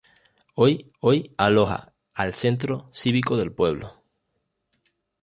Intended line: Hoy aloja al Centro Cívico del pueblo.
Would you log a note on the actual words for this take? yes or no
yes